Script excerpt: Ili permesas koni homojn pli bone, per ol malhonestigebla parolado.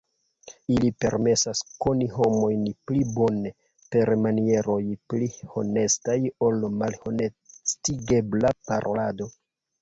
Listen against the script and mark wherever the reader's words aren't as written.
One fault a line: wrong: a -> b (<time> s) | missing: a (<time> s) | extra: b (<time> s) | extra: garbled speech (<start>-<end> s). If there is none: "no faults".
extra: manieroj pli honestaj (4.2 s)